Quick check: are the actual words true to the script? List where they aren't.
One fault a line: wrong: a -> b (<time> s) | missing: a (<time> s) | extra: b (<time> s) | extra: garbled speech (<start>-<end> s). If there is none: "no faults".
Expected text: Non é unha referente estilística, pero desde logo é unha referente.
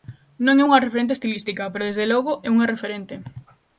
no faults